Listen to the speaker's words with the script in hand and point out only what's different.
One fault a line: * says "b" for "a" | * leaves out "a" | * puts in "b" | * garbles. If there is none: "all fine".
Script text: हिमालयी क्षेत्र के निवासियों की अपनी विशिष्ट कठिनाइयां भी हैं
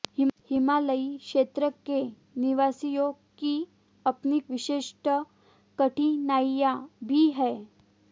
all fine